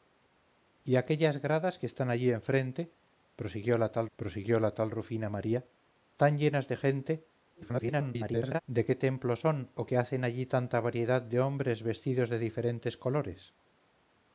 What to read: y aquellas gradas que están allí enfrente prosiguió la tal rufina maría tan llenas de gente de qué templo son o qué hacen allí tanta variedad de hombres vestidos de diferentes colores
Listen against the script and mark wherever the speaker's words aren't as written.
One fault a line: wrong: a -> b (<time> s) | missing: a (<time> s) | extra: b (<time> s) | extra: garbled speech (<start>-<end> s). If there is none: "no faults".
extra: prosiguió la tal (4.2 s)
extra: garbled speech (7.5-8.6 s)